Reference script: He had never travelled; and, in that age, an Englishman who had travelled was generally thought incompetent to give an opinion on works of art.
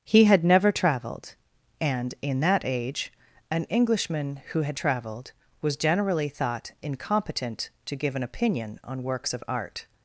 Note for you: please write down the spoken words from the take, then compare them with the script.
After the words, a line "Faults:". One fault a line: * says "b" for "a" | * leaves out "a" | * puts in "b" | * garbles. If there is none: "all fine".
He had never travelled; and, in that age, an Englishman who had travelled was generally thought incompetent to give an opinion on works of art.
Faults:
all fine